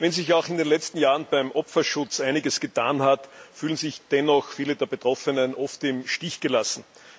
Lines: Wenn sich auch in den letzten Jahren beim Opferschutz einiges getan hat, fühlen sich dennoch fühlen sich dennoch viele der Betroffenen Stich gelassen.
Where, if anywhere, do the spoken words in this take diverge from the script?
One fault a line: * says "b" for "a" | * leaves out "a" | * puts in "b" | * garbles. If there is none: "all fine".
* leaves out "fühlen sich dennoch"
* puts in "oft im"